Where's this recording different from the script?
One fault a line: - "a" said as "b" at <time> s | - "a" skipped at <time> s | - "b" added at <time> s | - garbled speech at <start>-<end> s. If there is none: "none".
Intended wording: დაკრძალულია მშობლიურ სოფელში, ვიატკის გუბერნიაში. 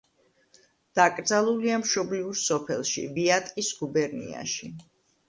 none